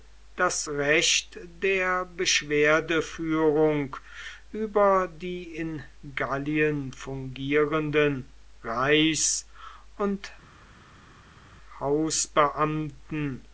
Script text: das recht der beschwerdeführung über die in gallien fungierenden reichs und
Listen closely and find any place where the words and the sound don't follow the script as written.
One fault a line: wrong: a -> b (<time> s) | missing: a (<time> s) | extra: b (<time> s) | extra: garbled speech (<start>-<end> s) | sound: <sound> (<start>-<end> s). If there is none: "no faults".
no faults